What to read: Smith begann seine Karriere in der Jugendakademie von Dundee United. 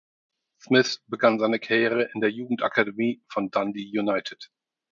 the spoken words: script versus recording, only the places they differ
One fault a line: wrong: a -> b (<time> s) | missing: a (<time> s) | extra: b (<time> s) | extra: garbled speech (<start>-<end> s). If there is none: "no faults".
no faults